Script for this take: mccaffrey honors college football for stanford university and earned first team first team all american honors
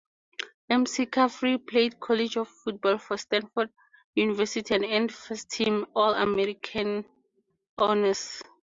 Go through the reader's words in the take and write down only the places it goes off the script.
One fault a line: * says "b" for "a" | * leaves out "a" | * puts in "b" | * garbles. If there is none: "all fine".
* says "played" for "honors"
* leaves out "first team"